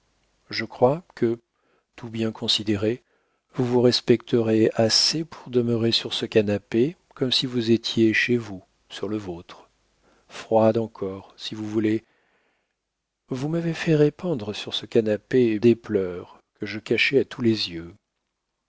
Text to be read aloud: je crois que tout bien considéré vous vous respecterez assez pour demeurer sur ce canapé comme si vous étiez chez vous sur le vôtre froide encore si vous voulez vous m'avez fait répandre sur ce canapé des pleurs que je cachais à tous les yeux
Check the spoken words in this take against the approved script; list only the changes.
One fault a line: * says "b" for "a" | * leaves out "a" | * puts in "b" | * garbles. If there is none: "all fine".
all fine